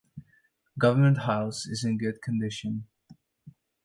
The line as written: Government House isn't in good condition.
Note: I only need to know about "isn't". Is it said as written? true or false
false